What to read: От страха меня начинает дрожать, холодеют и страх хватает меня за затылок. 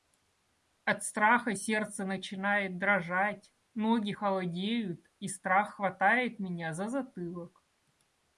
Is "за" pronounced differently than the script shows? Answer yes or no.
no